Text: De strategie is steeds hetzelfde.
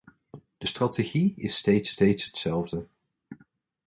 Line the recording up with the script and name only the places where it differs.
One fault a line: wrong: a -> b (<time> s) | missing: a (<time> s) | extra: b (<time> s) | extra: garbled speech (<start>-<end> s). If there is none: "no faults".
extra: steeds (1.9 s)